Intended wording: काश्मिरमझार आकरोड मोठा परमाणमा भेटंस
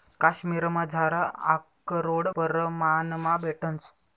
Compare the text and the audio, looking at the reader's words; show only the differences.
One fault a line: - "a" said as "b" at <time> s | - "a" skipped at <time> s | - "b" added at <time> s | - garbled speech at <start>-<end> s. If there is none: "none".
- "मोठा" skipped at 2.3 s